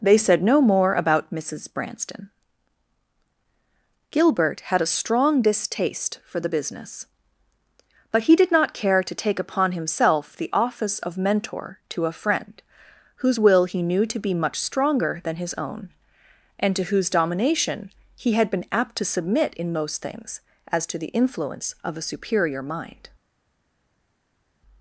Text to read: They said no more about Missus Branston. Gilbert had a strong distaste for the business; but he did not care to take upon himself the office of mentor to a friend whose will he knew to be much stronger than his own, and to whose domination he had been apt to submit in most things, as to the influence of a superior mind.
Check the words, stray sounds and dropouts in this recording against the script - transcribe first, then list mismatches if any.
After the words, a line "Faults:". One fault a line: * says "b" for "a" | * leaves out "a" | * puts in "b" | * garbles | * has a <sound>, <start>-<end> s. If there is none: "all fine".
They said no more about Missus Branston. Gilbert had a strong distaste for the business; but he did not care to take upon himself the office of mentor to a friend whose will he knew to be much stronger than his own, and to whose domination he had been apt to submit in most things, as to the influence of a superior mind.
Faults:
all fine